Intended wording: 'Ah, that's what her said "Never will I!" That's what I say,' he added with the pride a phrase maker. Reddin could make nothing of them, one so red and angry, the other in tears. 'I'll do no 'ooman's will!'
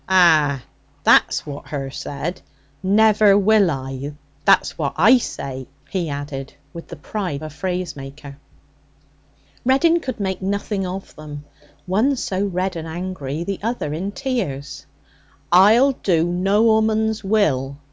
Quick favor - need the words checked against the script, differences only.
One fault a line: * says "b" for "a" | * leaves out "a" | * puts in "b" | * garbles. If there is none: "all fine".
all fine